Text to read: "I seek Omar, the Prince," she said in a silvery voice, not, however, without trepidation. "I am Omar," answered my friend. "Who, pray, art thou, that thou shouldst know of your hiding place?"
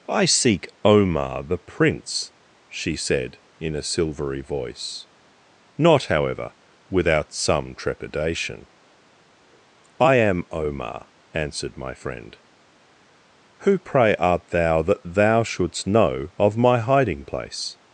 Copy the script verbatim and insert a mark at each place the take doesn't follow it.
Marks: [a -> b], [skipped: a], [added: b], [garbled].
"I seek Omar, the Prince," she said in a silvery voice, not, however, without [added: some] trepidation. "I am Omar," answered my friend. "Who, pray, art thou, that thou shouldst know of [your -> my] hiding place?"